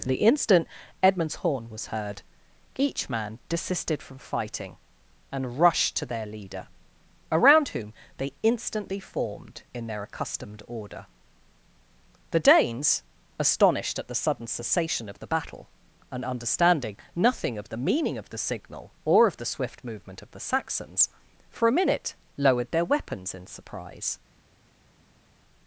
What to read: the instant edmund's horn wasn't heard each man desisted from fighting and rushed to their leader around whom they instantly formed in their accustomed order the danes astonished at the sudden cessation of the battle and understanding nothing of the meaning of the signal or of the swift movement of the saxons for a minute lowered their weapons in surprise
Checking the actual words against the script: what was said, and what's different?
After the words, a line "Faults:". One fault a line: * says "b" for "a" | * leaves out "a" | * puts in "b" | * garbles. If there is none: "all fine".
the instant edmund's horn was heard each man desisted from fighting and rushed to their leader around whom they instantly formed in their accustomed order the danes astonished at the sudden cessation of the battle and understanding nothing of the meaning of the signal or of the swift movement of the saxons for a minute lowered their weapons in surprise
Faults:
* says "was" for "wasn't"